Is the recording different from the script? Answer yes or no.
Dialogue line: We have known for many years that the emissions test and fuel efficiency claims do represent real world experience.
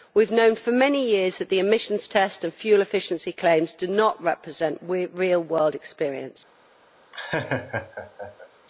yes